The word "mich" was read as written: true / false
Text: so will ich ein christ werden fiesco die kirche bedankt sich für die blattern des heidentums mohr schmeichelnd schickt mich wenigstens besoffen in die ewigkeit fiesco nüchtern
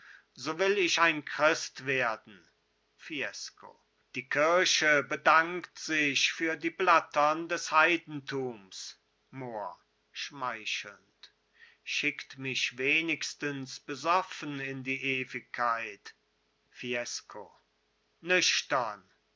true